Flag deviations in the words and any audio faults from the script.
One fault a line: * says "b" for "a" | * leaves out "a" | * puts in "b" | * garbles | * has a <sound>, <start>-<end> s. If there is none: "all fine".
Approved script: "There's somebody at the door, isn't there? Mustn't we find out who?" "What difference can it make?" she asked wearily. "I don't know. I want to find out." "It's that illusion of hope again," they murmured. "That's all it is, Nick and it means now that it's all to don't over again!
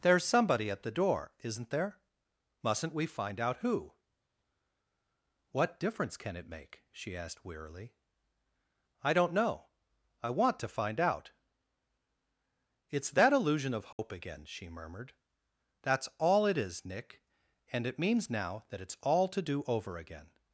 * has a dropout, 13.9-14.0 s
* says "she" for "they"
* says "do" for "don't"